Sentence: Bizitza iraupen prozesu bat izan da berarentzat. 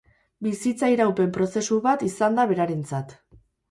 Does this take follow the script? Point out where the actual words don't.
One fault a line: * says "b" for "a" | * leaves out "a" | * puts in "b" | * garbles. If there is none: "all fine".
all fine